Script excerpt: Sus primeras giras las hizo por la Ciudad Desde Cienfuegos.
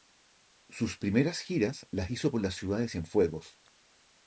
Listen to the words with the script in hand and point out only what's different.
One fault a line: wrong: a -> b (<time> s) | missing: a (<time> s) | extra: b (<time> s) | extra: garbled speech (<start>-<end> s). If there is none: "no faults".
wrong: Desde -> De (2.8 s)